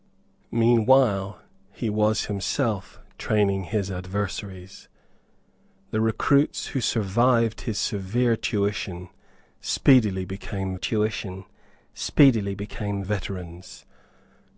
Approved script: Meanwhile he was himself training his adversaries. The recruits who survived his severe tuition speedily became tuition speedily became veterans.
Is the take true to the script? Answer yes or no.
yes